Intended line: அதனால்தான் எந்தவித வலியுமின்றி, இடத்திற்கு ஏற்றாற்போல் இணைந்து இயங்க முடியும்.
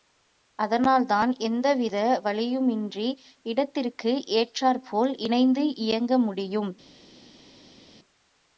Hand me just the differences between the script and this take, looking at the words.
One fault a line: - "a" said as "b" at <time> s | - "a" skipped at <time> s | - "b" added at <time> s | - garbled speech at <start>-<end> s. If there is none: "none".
none